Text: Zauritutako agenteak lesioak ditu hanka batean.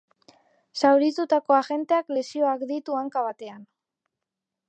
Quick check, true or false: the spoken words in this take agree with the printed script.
true